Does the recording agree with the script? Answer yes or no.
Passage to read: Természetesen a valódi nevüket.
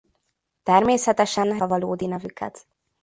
yes